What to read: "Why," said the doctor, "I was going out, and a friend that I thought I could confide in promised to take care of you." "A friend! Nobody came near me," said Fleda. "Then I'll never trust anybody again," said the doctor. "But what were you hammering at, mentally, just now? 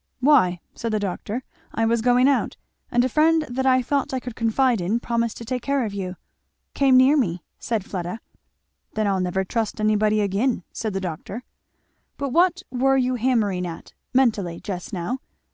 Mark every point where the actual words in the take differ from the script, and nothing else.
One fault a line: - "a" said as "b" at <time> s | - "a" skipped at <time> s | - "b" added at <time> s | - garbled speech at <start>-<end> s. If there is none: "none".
- "A friend Nobody" skipped at 6.2 s